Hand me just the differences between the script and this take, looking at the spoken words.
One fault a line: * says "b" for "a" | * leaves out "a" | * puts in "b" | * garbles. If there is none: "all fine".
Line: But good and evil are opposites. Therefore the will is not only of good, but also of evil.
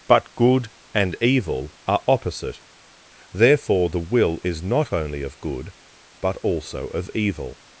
* says "opposite" for "opposites"